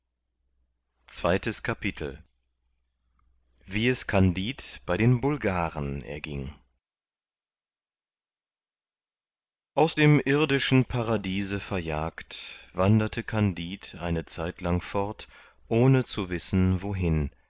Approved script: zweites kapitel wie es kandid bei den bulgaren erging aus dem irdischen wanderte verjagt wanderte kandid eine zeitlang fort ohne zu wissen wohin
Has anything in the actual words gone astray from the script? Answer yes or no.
yes